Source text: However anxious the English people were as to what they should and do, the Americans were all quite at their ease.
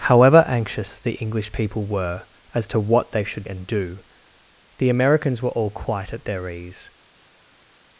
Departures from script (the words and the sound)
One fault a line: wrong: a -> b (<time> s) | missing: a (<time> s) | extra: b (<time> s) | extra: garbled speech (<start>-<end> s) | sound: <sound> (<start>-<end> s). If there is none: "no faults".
no faults